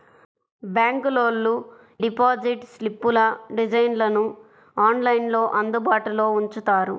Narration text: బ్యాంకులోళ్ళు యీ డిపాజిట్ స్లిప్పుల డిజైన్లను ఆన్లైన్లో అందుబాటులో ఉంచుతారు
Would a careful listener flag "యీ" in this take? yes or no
yes